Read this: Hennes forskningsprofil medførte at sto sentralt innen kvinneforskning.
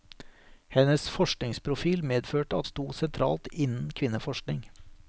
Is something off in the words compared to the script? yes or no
no